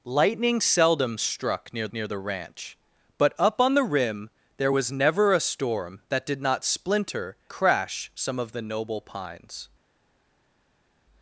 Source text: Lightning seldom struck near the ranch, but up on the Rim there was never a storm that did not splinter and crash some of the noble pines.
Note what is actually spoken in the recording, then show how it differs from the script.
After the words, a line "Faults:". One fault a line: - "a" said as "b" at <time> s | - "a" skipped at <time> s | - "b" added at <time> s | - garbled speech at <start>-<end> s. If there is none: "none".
Lightning seldom struck near near the ranch, but up on the Rim there was never a storm that did not splinter crash some of the noble pines.
Faults:
- "near" added at 1.9 s
- "and" skipped at 7.4 s